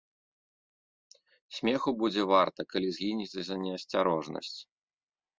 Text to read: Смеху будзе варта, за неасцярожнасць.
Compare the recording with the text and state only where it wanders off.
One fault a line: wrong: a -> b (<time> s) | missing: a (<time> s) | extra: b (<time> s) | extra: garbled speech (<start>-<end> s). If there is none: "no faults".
extra: калі згінеце (2.7 s)